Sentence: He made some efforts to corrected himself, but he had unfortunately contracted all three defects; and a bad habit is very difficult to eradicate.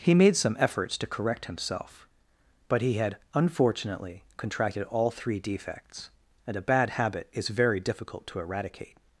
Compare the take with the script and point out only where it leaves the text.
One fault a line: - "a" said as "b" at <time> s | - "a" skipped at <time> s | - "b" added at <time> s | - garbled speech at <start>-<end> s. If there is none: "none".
- "corrected" said as "correct" at 1.1 s